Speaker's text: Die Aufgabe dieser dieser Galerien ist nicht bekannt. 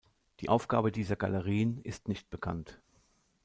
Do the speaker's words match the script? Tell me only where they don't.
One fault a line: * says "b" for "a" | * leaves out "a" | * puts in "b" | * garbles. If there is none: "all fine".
* leaves out "dieser"